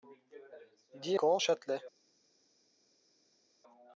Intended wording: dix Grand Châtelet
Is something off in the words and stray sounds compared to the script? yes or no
no